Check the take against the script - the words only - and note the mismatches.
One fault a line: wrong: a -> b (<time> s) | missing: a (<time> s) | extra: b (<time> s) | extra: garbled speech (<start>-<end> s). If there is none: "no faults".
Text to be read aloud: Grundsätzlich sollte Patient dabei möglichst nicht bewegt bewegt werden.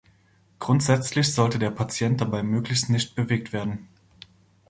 extra: der (1.6 s)
missing: bewegt (3.5 s)